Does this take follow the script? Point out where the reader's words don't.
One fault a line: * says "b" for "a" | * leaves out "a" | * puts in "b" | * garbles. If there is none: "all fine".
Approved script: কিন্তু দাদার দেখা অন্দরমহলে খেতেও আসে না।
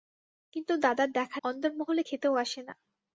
all fine